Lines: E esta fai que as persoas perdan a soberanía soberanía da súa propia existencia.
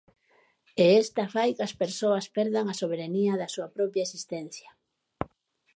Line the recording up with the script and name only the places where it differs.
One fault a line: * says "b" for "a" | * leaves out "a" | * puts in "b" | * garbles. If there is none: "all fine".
* leaves out "soberanía"